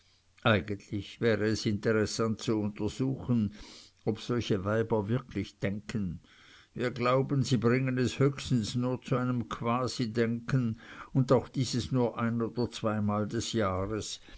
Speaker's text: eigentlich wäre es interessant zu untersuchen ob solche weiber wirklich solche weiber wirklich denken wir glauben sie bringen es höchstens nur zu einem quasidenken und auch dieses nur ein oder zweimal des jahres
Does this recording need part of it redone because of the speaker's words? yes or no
yes